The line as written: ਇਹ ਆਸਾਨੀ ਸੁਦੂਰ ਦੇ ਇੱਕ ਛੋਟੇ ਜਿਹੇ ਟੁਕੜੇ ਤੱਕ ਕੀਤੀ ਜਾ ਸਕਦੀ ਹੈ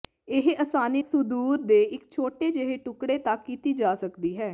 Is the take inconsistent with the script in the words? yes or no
no